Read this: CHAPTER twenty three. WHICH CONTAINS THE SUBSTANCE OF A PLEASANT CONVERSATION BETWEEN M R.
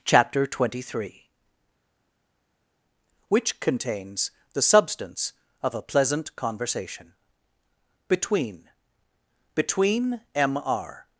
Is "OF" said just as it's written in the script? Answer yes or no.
yes